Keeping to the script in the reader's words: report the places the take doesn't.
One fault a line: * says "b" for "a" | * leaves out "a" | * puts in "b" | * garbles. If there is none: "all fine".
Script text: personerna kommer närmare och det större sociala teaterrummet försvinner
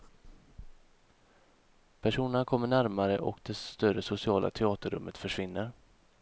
all fine